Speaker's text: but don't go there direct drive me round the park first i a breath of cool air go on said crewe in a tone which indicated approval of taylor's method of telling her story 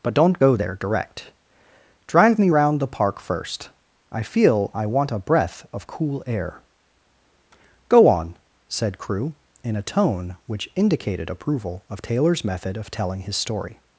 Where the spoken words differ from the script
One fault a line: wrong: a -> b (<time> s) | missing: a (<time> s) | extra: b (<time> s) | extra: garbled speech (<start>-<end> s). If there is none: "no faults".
extra: feel i want (4.2 s)
wrong: her -> his (13.2 s)